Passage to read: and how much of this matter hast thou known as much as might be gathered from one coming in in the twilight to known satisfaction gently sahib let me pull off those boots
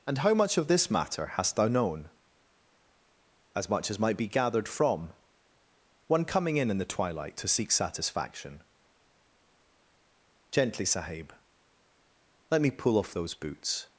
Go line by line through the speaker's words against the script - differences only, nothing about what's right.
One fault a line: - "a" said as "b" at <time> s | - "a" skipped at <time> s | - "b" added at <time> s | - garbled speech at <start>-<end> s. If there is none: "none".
- "known" said as "seek" at 7.5 s